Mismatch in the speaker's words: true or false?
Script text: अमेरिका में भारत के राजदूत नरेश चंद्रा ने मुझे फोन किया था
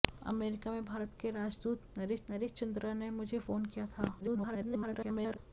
true